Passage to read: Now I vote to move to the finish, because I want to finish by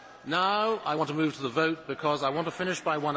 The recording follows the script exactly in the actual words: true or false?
false